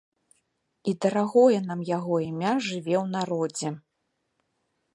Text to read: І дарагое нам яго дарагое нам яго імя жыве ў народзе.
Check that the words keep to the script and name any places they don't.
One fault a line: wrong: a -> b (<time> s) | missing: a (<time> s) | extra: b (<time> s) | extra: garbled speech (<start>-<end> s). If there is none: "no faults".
missing: дарагое нам яго (2.1 s)